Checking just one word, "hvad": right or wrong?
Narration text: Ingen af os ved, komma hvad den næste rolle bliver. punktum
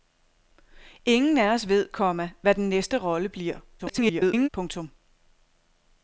right